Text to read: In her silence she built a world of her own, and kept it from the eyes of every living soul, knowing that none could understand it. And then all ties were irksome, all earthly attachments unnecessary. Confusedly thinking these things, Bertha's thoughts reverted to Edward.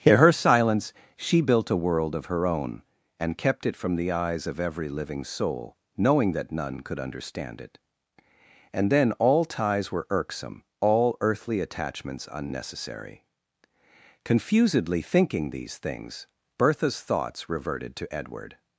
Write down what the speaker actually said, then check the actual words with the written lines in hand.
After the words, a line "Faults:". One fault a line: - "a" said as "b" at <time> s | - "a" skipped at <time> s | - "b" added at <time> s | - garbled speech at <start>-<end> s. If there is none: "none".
In her silence she built a world of her own, and kept it from the eyes of every living soul, knowing that none could understand it. And then all ties were irksome, all earthly attachments unnecessary. Confusedly thinking these things, Bertha's thoughts reverted to Edward.
Faults:
none